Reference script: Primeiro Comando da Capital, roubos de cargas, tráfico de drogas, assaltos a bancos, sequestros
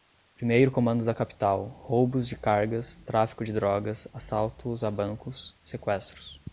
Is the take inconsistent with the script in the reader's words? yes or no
no